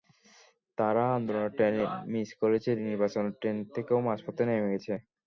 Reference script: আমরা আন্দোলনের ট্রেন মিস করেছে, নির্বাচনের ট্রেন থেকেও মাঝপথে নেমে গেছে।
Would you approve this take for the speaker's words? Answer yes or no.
no